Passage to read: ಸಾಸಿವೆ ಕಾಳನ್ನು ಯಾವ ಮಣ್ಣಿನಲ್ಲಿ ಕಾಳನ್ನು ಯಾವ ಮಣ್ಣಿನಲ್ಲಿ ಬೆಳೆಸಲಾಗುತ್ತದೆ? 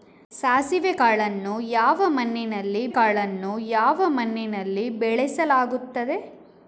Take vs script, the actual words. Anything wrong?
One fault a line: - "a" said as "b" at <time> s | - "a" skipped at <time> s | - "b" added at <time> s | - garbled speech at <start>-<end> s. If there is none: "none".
none